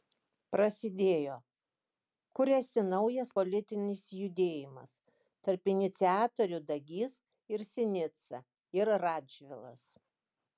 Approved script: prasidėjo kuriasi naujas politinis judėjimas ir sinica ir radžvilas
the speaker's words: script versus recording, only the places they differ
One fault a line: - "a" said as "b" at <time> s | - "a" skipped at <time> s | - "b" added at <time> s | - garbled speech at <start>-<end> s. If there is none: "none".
- "tarp iniciatorių dagys" added at 5.5 s